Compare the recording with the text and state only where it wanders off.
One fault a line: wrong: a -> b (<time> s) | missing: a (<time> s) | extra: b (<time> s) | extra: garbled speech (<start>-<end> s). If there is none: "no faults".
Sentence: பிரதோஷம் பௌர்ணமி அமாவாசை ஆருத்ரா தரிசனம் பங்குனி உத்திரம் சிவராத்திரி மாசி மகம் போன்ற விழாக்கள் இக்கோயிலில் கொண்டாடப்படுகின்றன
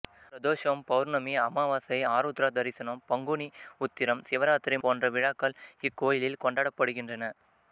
missing: மாசி மகம் (4.8 s)